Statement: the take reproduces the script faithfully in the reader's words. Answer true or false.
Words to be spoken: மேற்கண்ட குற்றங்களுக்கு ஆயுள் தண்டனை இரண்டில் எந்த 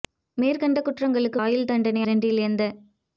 true